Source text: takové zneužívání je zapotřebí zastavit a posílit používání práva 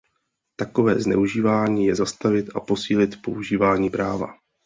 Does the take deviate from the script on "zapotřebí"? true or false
true